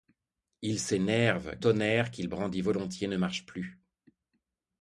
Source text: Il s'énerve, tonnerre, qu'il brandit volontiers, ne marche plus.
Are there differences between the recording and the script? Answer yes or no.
no